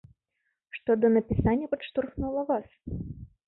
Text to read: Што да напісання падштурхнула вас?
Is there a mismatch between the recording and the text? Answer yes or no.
no